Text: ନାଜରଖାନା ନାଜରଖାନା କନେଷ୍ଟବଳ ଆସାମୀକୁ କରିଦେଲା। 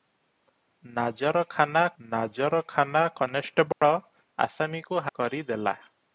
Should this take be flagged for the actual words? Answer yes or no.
no